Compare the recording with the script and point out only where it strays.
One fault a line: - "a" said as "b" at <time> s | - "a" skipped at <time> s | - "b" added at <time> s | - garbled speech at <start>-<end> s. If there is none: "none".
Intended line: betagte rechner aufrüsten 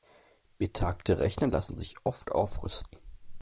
- "lassen sich oft" added at 1.4 s